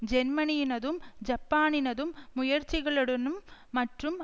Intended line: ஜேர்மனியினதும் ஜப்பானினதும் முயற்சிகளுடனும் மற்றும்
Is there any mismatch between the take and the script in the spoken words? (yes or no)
no